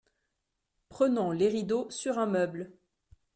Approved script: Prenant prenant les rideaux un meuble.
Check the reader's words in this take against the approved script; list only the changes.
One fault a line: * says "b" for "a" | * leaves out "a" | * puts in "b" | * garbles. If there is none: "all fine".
* leaves out "prenant"
* puts in "sur"